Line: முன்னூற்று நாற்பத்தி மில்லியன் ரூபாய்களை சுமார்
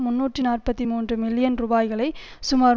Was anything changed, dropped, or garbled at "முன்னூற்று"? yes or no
no